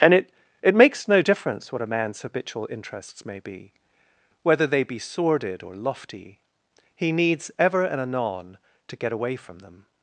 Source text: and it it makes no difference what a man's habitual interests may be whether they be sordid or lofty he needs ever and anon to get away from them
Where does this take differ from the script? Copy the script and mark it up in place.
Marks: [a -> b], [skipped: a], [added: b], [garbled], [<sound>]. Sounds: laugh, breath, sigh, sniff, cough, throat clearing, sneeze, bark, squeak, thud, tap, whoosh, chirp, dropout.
and it it makes no difference what a man's habitual interests may be whether they be sordid or lofty he needs ever and anon to get away from them